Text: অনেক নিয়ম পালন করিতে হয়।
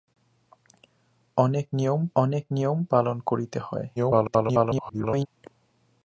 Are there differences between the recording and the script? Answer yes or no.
yes